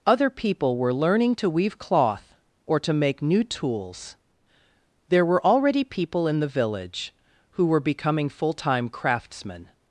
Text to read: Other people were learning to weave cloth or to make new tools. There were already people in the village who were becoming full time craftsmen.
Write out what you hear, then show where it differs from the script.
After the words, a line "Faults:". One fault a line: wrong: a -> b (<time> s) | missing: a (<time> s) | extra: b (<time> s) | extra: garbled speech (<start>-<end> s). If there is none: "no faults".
Other people were learning to weave cloth or to make new tools. There were already people in the village who were becoming full time craftsmen.
Faults:
no faults